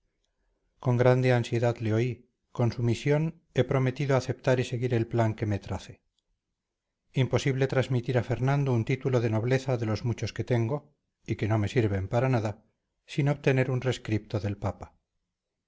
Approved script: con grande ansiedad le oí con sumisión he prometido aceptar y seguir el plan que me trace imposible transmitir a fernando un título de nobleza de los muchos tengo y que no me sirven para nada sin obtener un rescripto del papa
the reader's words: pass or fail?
fail